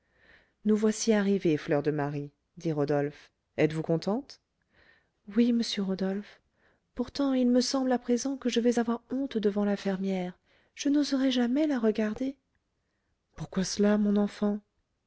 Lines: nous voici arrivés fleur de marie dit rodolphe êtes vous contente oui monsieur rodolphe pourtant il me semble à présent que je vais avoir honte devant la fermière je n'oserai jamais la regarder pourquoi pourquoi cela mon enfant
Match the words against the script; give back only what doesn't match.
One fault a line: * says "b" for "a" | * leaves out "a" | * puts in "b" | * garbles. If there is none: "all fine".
* leaves out "pourquoi"